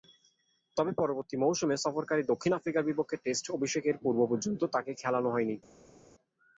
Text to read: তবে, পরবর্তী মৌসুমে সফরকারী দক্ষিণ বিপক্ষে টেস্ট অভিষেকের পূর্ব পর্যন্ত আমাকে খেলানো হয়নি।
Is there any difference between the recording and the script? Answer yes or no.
yes